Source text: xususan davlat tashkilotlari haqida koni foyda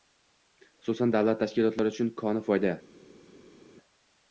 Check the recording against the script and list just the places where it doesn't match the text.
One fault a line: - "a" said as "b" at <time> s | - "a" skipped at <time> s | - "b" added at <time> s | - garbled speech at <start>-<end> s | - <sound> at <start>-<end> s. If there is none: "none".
- "haqida" said as "uchun" at 1.9 s